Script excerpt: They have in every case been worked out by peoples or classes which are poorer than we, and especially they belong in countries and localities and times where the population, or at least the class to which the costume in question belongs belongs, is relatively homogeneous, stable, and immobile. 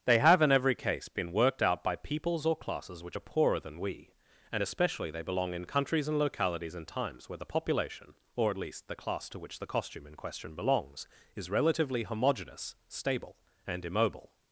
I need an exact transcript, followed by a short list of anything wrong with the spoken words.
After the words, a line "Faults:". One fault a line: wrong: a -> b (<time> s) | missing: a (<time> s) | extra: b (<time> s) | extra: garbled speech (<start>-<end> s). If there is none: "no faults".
They have in every case been worked out by peoples or classes which are poorer than we, and especially they belong in countries and localities and times where the population, or at least the class to which the costume in question belongs, is relatively homogeneous, stable, and immobile.
Faults:
missing: belongs (11.1 s)